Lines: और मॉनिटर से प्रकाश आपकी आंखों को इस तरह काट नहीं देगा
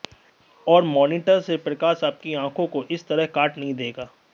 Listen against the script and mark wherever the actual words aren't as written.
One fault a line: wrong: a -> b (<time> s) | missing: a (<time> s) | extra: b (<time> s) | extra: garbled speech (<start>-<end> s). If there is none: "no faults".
no faults